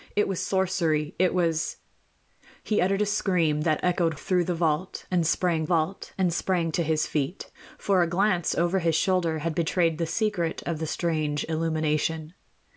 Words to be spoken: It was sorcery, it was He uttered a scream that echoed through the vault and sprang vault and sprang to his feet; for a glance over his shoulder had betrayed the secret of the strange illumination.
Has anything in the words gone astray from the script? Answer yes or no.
no